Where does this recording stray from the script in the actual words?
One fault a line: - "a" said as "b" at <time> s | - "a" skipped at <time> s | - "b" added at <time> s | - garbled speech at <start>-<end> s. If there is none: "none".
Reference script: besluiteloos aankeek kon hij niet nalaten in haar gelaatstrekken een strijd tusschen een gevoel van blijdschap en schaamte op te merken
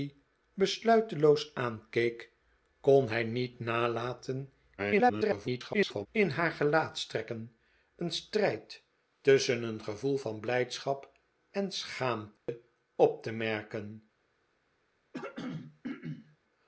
- garbled speech at 4.8-6.1 s